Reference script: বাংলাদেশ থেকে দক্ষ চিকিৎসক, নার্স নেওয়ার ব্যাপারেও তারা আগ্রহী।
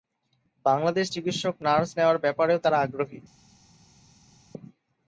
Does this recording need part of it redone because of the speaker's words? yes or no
yes